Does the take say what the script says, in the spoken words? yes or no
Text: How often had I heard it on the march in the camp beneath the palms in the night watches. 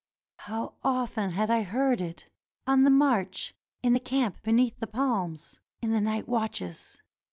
yes